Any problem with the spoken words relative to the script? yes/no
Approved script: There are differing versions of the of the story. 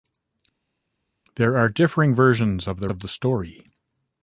no